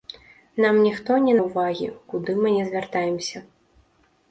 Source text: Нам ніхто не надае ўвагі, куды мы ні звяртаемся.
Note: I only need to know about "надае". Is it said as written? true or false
false